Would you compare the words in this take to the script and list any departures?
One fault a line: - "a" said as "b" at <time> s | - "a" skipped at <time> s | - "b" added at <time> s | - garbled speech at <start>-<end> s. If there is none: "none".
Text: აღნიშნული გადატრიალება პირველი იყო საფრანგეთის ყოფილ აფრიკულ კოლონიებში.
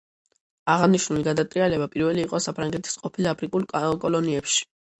none